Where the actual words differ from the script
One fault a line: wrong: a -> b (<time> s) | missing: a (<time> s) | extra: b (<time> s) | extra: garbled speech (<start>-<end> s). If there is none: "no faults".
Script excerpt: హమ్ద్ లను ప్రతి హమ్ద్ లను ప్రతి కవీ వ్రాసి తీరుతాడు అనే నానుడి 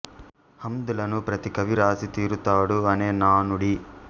missing: హమ్ద్ లను ప్రతి (1.5 s)